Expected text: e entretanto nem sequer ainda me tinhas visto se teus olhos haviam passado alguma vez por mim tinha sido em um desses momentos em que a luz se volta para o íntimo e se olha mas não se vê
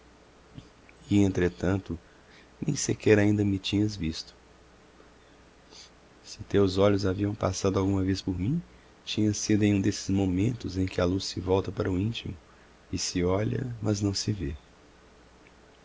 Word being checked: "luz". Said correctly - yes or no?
yes